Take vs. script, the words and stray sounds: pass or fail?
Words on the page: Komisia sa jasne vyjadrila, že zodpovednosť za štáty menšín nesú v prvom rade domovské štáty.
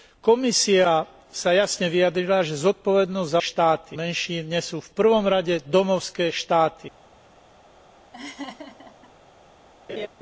fail